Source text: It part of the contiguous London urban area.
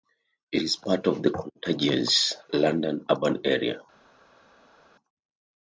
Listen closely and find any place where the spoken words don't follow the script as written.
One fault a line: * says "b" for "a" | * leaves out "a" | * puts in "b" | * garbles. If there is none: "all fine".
* puts in "is"